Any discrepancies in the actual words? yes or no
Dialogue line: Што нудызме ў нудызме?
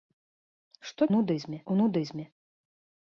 no